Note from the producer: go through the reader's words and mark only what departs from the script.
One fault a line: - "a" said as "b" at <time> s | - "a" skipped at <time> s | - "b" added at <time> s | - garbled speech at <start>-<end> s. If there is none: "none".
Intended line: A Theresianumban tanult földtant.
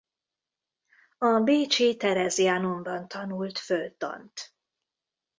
- "bécsi" added at 1.4 s